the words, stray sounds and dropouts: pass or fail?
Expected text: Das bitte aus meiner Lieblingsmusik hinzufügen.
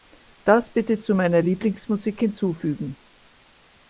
fail